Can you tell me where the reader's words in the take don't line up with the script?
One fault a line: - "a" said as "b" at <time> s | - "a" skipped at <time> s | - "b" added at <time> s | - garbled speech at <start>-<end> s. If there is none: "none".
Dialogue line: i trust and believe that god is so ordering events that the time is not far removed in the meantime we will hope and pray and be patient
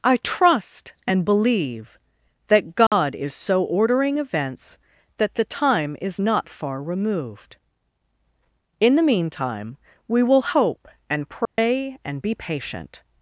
none